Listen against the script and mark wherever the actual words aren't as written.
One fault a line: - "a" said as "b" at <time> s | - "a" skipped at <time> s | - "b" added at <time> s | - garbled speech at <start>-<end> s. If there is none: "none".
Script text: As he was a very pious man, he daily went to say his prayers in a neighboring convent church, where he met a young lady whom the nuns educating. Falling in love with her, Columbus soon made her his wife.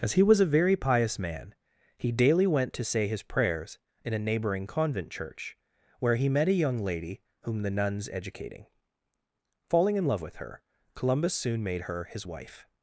none